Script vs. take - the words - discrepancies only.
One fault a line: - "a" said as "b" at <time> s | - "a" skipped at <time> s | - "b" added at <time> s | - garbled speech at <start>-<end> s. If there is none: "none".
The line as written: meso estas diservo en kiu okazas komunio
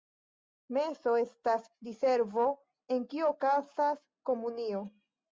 none